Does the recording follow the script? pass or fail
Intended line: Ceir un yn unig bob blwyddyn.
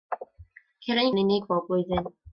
pass